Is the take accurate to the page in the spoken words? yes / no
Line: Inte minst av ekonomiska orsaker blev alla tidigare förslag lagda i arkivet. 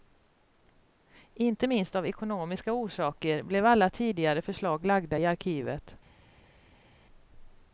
yes